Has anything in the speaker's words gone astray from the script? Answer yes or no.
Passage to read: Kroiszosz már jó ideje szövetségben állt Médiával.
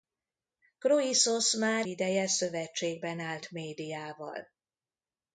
yes